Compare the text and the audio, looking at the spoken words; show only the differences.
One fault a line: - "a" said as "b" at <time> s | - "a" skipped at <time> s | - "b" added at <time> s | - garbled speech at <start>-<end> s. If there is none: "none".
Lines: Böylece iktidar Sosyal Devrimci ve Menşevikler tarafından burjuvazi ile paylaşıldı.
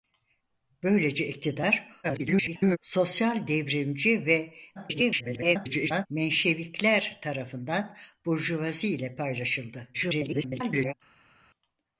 - garbled speech at 2.0-2.8 s
- garbled speech at 4.8-6.1 s
- garbled speech at 9.9-10.9 s